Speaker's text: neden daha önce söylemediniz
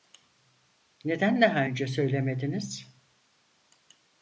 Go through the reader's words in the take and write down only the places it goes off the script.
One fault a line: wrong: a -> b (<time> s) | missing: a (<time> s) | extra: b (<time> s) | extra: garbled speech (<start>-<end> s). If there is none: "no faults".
no faults